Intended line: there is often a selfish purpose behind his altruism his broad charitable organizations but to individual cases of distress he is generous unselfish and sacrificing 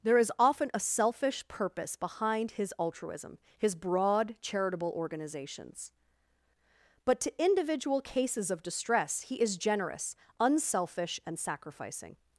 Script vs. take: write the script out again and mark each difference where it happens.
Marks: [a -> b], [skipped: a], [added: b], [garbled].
there is often a selfish purpose behind his altruism his broad charitable organizations but to individual cases of distress he is generous unselfish and sacrificing